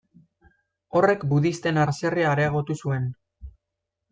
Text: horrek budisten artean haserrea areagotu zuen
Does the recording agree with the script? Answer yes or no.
no